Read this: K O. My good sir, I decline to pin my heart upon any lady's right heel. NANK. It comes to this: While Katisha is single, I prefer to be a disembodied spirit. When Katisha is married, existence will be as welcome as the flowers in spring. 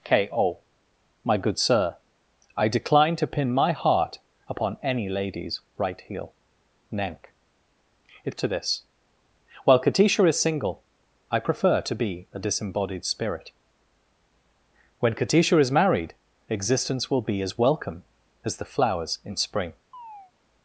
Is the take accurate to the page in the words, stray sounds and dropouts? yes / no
no